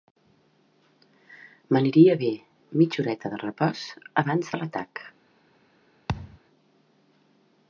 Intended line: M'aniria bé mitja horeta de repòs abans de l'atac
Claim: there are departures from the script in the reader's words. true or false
false